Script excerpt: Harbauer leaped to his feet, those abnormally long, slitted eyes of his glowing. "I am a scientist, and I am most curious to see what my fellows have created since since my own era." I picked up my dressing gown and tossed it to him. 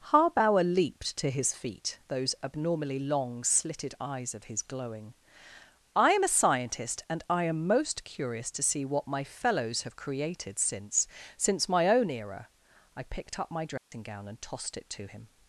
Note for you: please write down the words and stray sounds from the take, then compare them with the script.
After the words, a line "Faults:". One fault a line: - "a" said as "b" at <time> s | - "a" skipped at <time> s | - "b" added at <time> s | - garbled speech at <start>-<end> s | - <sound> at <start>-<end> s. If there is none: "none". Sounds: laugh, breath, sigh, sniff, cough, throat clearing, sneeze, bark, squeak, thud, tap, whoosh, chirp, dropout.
Harbauer leaped to his feet, those abnormally long, slitted eyes of his glowing. "I am a scientist, and I am most curious to see what my fellows have created since since my own era." I picked up my dressing gown and tossed it to him.
Faults:
- dropout at 13.8-13.9 s